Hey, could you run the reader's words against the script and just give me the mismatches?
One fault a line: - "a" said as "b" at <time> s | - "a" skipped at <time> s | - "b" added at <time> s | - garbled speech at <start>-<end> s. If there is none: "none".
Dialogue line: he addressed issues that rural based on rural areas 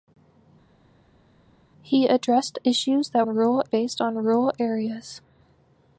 none